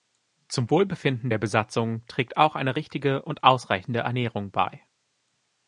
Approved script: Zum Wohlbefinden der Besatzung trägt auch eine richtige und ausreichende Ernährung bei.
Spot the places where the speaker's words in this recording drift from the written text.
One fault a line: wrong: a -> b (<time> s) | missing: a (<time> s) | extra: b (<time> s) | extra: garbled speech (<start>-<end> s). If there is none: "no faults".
no faults